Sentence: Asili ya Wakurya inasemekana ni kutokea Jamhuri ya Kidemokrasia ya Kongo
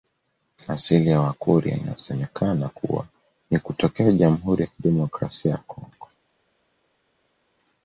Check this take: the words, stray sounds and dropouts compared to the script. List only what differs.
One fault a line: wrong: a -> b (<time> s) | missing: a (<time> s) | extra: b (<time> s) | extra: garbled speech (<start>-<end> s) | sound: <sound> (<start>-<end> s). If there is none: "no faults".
extra: kuwa (2.7 s)